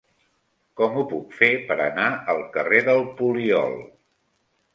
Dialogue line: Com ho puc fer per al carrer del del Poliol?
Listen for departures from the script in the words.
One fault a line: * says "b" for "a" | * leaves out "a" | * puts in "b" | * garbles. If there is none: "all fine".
* puts in "anar"
* leaves out "del"